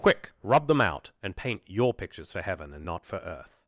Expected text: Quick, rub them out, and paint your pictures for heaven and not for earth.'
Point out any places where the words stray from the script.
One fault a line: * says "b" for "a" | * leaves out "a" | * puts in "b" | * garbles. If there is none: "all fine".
all fine